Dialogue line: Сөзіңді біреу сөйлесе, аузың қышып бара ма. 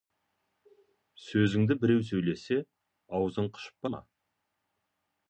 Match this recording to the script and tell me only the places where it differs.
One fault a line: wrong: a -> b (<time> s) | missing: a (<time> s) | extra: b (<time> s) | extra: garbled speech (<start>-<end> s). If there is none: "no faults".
missing: бара (3.9 s)